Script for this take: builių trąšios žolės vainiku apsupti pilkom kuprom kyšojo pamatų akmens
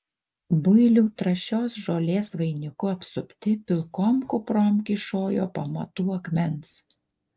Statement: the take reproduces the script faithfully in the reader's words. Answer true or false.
true